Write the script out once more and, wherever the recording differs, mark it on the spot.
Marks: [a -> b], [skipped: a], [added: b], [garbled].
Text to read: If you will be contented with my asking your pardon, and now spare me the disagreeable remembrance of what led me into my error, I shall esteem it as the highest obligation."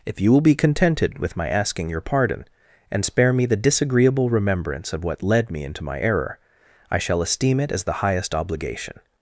If you will be contented with my asking your pardon, and [skipped: now] spare me the disagreeable remembrance of what led me into my error, I shall esteem it as the highest obligation."